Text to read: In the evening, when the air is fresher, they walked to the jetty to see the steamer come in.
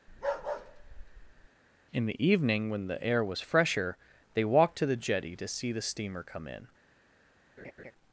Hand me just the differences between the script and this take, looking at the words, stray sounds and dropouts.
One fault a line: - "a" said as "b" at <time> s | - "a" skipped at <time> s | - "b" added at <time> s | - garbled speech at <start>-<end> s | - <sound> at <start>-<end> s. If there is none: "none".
- bark at 0.1-1.5 s
- "is" said as "was" at 3.2 s
- laugh at 7.6-7.9 s